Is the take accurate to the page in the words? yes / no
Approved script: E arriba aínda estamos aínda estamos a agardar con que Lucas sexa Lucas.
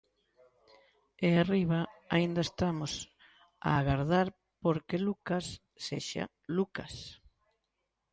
no